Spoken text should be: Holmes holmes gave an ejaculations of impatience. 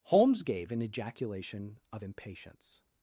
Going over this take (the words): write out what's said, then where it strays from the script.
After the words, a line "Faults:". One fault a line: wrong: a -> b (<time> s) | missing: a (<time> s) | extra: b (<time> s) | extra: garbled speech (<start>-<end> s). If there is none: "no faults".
Holmes gave an ejaculation of impatience.
Faults:
missing: holmes (0.4 s)
wrong: ejaculations -> ejaculation (0.8 s)